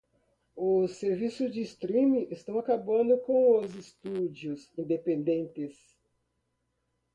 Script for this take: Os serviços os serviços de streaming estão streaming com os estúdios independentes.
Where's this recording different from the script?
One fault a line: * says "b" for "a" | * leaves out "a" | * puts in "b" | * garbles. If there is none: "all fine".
* leaves out "os serviços"
* says "acabando" for "streaming"